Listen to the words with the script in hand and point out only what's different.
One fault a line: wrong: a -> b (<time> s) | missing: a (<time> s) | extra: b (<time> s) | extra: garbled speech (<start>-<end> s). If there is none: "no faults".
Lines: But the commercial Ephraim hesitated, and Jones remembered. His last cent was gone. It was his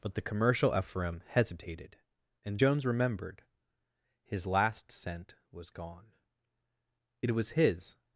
no faults